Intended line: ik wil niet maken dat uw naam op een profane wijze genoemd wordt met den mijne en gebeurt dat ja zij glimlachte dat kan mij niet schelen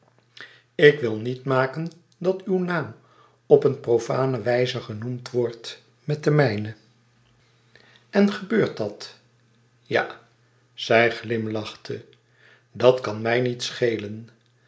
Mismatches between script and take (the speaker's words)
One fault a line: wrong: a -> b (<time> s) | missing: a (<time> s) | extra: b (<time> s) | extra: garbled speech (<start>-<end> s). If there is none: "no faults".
no faults